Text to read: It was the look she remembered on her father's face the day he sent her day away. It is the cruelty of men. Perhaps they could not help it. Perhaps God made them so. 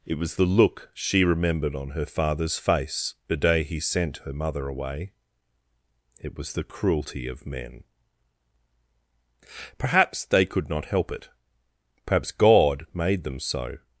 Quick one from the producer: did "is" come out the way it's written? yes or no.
no